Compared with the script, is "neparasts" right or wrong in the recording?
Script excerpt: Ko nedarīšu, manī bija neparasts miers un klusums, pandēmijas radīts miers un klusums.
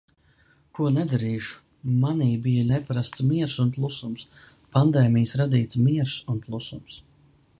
right